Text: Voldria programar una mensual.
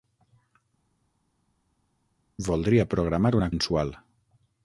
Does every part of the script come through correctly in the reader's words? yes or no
yes